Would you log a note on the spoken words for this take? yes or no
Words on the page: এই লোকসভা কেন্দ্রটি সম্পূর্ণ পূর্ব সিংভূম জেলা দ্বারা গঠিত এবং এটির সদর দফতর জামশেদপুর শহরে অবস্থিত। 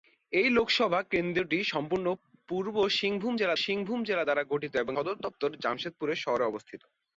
yes